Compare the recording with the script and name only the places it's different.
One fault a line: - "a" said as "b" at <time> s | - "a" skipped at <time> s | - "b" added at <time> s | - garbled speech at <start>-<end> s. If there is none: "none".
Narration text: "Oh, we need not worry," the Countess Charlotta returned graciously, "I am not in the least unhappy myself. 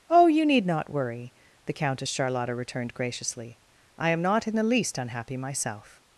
- "we" said as "you" at 0.3 s